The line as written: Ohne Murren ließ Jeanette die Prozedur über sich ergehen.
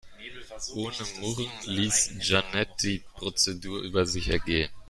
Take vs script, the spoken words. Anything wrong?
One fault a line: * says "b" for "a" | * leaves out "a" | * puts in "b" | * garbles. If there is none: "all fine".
all fine